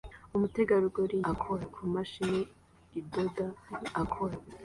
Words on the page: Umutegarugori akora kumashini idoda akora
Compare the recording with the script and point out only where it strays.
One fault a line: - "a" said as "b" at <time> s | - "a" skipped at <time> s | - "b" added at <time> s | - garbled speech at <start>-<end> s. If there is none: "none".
none